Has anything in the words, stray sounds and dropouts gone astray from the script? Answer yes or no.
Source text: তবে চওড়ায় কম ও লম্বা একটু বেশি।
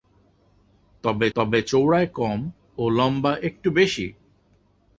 yes